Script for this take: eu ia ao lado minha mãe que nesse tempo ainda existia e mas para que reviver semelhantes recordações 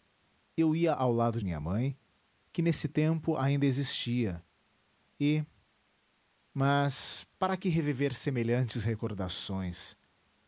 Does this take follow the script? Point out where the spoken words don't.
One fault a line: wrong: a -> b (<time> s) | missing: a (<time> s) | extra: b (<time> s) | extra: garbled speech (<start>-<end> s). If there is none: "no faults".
no faults